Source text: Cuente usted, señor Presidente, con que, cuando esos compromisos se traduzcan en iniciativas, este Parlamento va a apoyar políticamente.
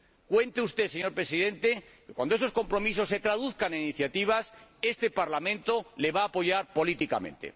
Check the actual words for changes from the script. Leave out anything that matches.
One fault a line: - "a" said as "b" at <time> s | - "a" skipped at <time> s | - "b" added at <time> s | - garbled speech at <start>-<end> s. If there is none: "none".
- "le" added at 6.0 s